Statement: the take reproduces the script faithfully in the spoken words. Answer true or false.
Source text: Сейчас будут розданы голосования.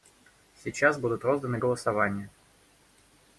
true